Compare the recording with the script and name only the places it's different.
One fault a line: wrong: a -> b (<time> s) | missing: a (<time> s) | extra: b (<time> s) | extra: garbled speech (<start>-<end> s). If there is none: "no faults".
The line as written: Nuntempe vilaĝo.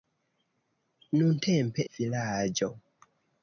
no faults